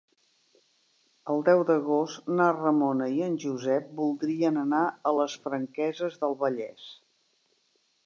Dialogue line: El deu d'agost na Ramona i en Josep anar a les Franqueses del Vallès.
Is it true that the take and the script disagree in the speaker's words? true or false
true